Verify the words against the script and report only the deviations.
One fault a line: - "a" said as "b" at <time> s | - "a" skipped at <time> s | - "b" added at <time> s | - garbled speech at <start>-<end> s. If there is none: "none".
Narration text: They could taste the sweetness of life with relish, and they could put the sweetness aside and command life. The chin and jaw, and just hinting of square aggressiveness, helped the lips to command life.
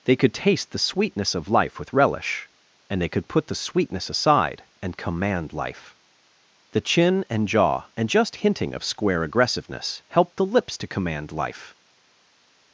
none